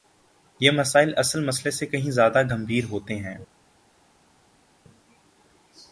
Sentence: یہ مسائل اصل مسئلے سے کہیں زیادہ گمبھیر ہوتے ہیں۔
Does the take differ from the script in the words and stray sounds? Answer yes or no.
no